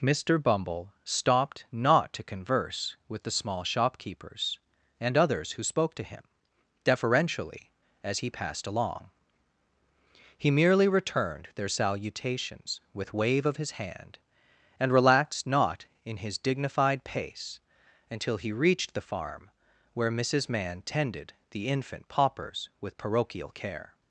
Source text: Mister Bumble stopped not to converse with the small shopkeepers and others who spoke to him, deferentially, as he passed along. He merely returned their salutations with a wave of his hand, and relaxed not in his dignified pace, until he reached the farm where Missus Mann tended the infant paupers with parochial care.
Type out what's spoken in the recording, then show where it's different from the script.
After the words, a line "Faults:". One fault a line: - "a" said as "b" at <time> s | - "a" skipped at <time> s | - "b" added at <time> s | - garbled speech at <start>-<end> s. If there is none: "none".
Mister Bumble stopped not to converse with the small shopkeepers and others who spoke to him, deferentially, as he passed along. He merely returned their salutations with wave of his hand, and relaxed not in his dignified pace, until he reached the farm where Missus Mann tended the infant paupers with parochial care.
Faults:
- "a" skipped at 13.1 s